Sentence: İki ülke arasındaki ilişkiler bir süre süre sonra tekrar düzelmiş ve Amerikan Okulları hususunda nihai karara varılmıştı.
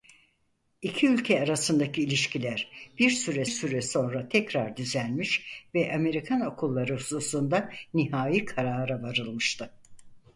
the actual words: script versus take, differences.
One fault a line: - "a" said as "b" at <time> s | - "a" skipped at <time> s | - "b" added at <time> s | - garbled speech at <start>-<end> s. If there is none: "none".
none